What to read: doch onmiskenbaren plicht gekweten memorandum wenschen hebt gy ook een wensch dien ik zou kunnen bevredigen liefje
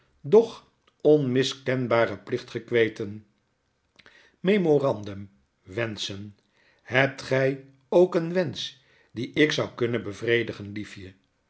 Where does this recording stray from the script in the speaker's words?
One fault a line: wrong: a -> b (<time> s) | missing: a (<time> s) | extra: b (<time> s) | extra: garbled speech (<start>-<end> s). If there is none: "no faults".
no faults